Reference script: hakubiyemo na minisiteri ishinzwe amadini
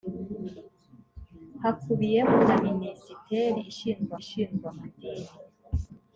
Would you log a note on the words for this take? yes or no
yes